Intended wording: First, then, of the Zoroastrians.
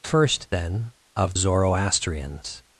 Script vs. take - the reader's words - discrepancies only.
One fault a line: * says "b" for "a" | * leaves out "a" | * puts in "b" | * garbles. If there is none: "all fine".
* leaves out "the"